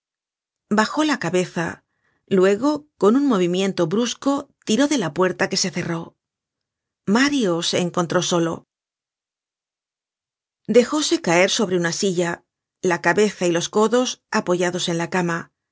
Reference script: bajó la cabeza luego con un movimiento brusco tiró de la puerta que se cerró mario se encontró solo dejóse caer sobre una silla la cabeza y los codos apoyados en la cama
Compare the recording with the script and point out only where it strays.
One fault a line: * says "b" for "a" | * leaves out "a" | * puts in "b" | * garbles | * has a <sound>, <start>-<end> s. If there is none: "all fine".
all fine